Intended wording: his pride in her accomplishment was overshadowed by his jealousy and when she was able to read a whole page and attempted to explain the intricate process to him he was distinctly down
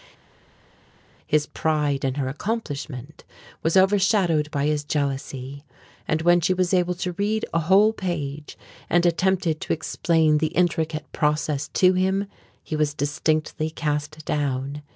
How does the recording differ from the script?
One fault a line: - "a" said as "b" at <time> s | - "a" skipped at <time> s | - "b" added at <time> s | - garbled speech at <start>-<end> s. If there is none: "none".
- "cast" added at 13.7 s